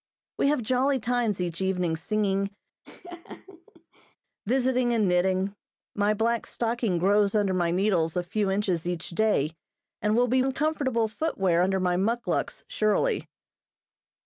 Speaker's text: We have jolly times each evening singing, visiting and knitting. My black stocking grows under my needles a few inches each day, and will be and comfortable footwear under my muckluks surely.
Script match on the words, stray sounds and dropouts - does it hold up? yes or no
no